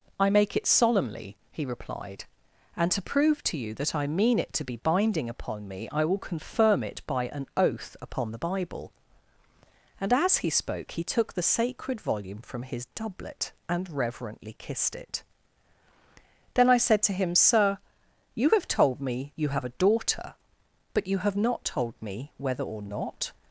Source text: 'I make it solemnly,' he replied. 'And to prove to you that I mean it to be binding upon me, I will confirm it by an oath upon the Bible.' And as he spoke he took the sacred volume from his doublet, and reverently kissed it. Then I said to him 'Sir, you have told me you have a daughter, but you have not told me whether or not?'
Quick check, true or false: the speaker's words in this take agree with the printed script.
true